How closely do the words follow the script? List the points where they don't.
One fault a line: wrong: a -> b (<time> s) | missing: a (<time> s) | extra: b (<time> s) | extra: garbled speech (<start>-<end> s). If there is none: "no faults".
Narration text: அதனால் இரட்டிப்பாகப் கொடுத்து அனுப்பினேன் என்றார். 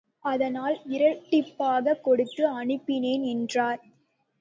no faults